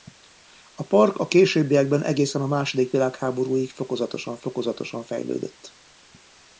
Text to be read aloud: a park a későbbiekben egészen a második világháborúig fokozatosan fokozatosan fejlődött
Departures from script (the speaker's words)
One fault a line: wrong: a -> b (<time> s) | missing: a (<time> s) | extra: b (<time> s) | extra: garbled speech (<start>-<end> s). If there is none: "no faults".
no faults